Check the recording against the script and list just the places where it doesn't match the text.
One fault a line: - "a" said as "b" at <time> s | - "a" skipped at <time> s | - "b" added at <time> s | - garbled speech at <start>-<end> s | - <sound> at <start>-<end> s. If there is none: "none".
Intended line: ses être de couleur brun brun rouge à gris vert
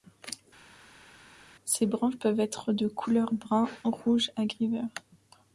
- "branches peuvent" added at 1.8 s
- "brun" skipped at 3.7 s